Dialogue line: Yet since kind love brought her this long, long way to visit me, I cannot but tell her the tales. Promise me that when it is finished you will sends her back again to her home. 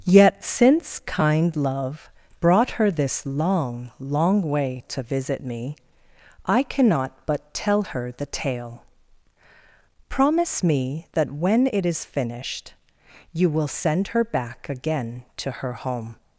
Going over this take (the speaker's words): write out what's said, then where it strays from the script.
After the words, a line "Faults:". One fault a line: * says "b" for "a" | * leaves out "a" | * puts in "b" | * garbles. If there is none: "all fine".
Yet since kind love brought her this long, long way to visit me, I cannot but tell her the tale. Promise me that when it is finished you will send her back again to her home.
Faults:
* says "tale" for "tales"
* says "send" for "sends"